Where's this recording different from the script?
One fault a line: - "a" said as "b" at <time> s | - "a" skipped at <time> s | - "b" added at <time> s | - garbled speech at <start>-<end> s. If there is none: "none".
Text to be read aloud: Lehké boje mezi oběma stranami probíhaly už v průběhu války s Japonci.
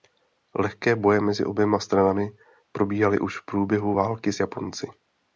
none